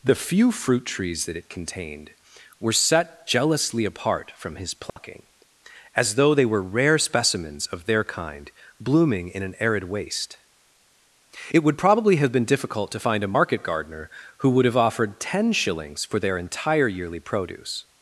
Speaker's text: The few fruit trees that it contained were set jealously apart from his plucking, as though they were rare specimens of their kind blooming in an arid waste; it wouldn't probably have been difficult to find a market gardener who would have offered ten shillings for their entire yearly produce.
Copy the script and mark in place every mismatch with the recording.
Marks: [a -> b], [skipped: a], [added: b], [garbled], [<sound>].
The few fruit trees that it contained were set jealously apart from his plucking, [dropout] as though they were rare specimens of their kind blooming in an arid waste; it [wouldn't -> would] probably have been difficult to find a market gardener who would have offered ten shillings for their entire yearly produce.